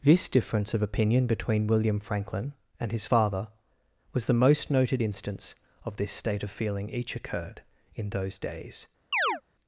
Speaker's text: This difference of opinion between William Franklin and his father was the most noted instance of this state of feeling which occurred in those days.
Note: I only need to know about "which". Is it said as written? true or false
false